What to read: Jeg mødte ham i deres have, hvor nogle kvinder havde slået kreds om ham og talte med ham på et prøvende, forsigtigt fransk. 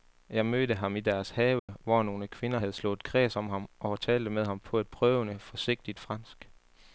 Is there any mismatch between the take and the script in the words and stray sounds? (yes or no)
yes